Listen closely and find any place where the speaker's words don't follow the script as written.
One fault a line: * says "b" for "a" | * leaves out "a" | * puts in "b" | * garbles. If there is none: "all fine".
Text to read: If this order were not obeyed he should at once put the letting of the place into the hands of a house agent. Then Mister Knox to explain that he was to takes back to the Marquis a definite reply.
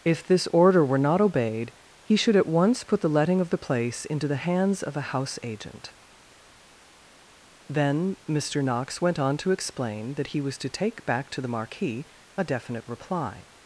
* puts in "went on"
* says "take" for "takes"